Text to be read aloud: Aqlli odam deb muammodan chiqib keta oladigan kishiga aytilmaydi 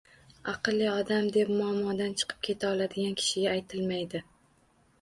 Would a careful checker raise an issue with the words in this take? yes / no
no